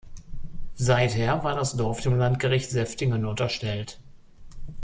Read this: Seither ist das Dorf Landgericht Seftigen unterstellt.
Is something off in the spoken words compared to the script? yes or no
yes